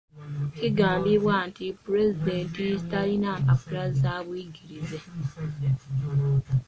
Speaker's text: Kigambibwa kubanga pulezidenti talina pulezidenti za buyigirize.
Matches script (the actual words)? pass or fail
fail